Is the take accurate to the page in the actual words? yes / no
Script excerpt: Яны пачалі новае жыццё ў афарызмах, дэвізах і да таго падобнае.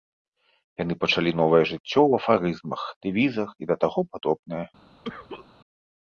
yes